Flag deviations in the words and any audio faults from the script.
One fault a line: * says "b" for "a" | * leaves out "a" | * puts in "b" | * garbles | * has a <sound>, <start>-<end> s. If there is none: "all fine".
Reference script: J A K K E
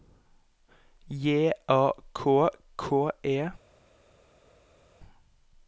all fine